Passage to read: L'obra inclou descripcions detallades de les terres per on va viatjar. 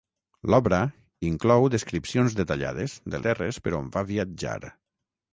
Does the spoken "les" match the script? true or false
false